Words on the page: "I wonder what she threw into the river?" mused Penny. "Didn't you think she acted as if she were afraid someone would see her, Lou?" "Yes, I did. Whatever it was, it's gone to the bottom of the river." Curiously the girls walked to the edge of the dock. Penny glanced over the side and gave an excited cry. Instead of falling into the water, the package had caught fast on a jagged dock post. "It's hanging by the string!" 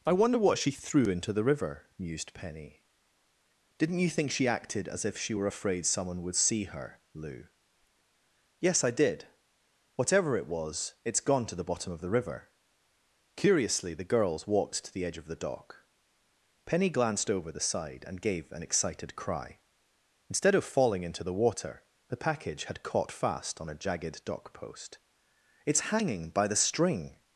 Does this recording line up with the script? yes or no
yes